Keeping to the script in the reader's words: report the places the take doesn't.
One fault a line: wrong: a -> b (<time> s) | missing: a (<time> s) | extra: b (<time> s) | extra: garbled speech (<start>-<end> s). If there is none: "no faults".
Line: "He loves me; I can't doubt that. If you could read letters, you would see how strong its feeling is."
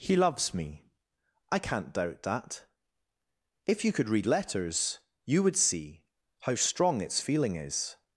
no faults